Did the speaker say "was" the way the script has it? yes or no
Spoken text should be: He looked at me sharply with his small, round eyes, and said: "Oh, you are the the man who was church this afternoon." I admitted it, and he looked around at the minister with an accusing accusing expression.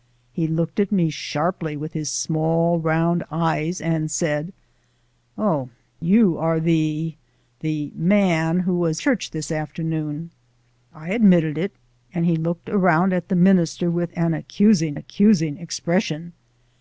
yes